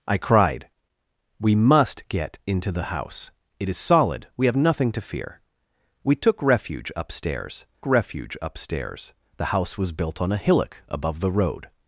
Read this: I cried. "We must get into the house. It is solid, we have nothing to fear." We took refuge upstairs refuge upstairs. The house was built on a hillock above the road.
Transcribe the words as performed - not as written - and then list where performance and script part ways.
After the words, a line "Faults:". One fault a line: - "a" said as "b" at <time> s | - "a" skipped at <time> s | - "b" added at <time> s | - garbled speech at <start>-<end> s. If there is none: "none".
I cried. "We must get into the house. It is solid, we have nothing to fear." We took refuge upstairs refuge upstairs. The house was built on a hillock above the road.
Faults:
none